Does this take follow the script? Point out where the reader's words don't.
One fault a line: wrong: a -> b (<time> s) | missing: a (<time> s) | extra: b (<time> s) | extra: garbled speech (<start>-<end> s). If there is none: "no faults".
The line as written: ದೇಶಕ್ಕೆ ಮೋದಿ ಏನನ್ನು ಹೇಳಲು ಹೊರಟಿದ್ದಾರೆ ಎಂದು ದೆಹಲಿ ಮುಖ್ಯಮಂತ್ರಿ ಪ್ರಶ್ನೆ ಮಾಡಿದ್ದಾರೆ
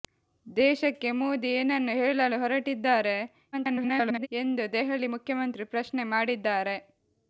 extra: garbled speech (3.5-4.3 s)